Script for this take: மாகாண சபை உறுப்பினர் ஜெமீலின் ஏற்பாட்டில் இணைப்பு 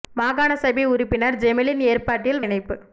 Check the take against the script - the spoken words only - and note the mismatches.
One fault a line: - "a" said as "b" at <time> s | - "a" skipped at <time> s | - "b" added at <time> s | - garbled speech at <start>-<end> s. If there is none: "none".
none